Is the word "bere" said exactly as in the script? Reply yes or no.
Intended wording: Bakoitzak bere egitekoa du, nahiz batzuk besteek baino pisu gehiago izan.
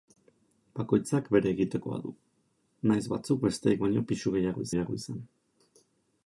yes